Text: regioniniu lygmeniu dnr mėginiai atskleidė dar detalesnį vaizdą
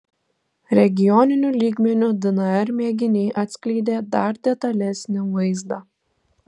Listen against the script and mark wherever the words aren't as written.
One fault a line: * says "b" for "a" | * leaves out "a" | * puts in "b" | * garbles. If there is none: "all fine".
all fine